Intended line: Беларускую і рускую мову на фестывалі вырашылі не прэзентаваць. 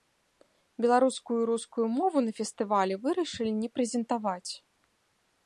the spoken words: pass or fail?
pass